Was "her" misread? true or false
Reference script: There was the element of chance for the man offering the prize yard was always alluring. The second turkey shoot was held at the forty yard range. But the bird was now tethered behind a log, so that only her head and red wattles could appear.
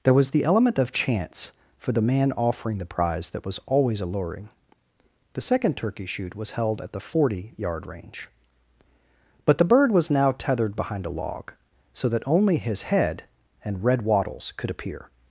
true